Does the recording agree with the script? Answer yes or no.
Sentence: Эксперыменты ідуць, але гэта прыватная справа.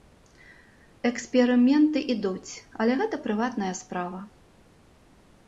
yes